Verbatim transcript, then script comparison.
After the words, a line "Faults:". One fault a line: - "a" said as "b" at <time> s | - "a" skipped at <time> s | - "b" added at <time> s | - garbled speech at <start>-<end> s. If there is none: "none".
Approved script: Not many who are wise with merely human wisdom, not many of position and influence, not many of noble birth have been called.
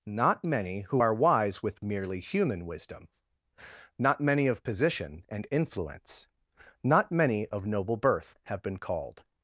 Not many who are wise with merely human wisdom, not many of position and influence, not many of noble birth have been called.
Faults:
none